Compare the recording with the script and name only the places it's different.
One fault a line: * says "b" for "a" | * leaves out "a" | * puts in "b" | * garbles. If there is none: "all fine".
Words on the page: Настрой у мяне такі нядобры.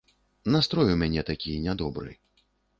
all fine